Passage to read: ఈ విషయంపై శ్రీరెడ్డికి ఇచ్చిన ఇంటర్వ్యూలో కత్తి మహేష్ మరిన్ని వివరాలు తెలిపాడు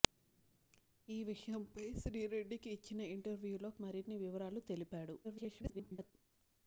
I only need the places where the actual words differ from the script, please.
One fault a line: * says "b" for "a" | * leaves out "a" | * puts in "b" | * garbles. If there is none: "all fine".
* leaves out "కత్తి మహేష్"
* garbles